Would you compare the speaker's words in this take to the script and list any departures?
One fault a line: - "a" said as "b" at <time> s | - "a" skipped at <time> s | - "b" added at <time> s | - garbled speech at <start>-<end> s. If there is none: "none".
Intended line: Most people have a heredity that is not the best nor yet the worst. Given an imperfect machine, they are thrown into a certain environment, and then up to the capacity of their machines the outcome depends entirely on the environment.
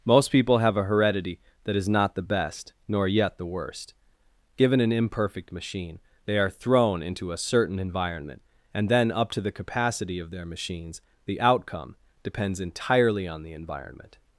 none